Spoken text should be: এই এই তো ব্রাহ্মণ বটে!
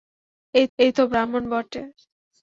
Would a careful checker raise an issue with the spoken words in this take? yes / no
no